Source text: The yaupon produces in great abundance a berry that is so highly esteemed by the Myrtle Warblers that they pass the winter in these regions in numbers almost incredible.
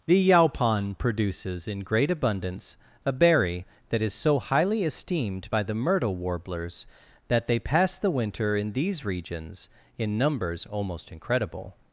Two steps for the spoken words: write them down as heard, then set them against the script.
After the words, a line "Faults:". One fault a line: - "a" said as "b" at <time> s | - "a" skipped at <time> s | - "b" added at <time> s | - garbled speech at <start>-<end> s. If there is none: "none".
The yaupon produces in great abundance a berry that is so highly esteemed by the Myrtle Warblers that they pass the winter in these regions in numbers almost incredible.
Faults:
none